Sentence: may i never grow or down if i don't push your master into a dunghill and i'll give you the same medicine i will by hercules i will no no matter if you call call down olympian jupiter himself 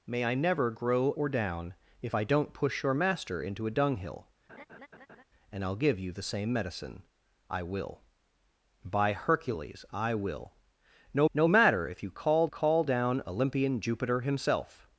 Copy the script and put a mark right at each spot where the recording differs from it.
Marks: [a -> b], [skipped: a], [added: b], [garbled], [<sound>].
may i never grow or down if i don't push your master into a dunghill [laugh] and i'll give you the same medicine i will by hercules i will no no matter if you call call down olympian jupiter himself